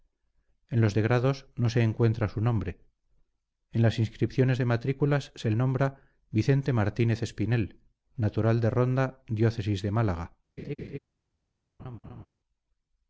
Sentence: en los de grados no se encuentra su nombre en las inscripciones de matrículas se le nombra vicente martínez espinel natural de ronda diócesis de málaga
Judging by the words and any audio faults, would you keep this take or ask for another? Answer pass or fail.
fail